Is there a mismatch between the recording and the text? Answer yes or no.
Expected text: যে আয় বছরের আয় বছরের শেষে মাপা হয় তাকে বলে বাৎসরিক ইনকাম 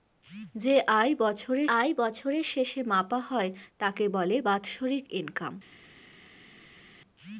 no